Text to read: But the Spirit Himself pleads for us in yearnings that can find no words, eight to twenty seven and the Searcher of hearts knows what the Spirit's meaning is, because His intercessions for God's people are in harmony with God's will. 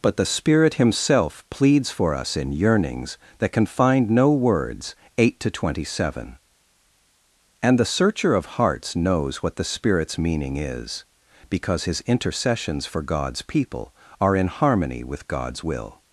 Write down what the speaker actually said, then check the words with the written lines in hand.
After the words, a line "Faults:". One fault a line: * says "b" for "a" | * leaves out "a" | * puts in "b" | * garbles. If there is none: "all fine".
But the Spirit Himself pleads for us in yearnings that can find no words, eight to twenty seven and the Searcher of hearts knows what the Spirit's meaning is, because His intercessions for God's people are in harmony with God's will.
Faults:
all fine